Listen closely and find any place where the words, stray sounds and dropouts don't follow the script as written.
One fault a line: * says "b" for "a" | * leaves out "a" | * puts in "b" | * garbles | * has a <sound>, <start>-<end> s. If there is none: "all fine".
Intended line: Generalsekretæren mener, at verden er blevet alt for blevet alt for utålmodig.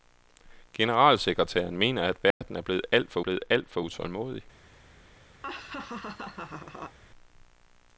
* has a dropout, 2.3-2.4 s
* has a laugh, 5.4-7.0 s